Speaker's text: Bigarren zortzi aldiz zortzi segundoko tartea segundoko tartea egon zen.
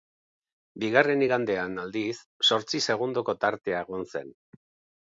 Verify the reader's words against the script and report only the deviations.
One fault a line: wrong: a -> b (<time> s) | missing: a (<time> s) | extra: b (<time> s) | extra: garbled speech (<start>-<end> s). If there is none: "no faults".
wrong: zortzi -> igandean (1.2 s)
missing: segundoko tartea (3.9 s)